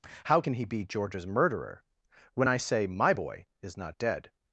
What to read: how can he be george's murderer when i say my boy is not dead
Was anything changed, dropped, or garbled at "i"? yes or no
no